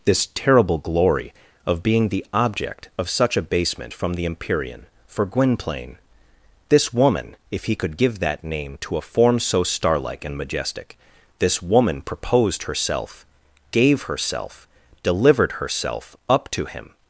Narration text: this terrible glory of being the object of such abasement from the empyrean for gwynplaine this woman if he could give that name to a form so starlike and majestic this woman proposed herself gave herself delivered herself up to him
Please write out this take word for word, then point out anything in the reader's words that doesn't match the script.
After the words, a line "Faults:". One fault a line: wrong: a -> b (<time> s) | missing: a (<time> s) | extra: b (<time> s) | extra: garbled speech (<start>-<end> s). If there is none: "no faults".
this terrible glory of being the object of such abasement from the empyrean for gwynplaine this woman if he could give that name to a form so starlike and majestic this woman proposed herself gave herself delivered herself up to him
Faults:
no faults